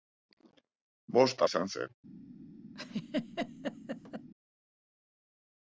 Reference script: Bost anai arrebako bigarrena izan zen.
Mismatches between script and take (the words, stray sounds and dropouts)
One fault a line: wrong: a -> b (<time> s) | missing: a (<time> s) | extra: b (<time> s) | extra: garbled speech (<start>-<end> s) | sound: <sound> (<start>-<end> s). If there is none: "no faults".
missing: anai arrebako bigarrena (1.4 s)
sound: laugh (2.7-4.3 s)